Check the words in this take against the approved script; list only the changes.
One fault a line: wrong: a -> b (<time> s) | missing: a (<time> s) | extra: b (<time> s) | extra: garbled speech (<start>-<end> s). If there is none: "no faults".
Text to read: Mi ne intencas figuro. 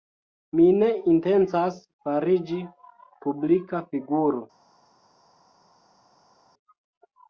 extra: fariĝi publika (2.1 s)